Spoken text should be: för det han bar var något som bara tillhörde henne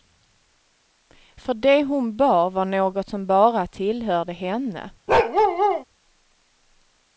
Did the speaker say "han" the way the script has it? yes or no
no